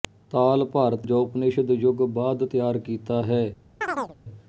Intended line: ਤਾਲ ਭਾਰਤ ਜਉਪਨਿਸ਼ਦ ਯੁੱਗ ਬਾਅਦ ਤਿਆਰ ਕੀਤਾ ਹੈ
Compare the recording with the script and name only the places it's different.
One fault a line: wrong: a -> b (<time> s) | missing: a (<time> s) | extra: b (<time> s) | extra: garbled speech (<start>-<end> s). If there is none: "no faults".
no faults